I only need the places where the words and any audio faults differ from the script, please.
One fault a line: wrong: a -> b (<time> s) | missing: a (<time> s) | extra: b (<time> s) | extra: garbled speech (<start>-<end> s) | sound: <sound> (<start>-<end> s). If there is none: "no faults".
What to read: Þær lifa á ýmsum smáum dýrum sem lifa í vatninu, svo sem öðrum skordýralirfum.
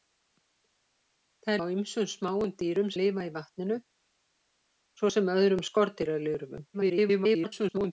missing: lifa (1.6 s)
missing: sem (2.9 s)
extra: garbled speech (6.7-7.9 s)